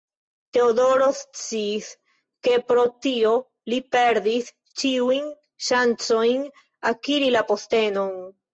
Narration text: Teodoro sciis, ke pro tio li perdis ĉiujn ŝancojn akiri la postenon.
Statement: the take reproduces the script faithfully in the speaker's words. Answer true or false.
true